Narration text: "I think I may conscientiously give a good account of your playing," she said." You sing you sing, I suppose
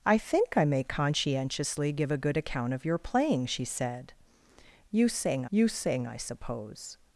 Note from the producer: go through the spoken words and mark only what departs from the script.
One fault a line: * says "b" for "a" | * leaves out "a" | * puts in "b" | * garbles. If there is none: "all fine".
all fine